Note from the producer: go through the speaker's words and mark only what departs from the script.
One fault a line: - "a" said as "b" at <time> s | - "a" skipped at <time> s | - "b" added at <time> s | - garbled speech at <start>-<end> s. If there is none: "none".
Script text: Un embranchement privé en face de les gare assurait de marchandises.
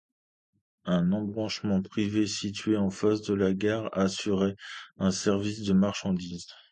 - "situé" added at 2.2 s
- "les" said as "la" at 3.4 s
- "un service" added at 5.0 s